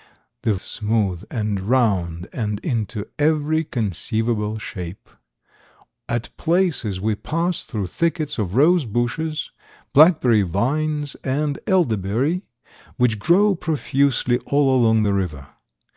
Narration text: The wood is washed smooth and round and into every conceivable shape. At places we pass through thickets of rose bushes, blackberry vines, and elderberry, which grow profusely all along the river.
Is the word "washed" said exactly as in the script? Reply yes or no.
no